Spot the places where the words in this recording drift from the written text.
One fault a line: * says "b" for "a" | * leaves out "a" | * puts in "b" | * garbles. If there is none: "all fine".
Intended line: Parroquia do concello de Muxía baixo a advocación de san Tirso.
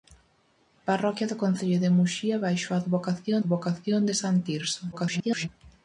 * puts in "advocación"
* garbles